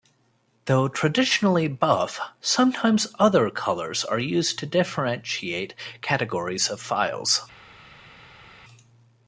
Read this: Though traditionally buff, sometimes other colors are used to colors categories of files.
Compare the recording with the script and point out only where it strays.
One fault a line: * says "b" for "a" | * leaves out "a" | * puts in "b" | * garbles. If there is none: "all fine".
* says "differentiate" for "colors"